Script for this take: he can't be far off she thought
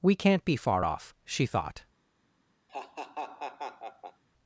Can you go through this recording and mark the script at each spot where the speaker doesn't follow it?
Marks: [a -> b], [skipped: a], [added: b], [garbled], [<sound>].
[he -> we] can't be far off she thought [laugh]